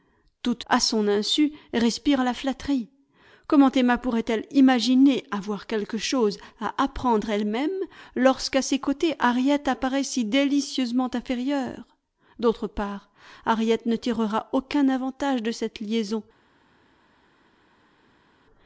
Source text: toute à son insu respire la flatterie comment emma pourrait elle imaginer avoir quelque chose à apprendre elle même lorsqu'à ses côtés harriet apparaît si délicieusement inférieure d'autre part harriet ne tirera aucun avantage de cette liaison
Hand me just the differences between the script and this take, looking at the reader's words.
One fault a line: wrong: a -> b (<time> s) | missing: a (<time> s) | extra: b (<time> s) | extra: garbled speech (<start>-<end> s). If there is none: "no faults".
no faults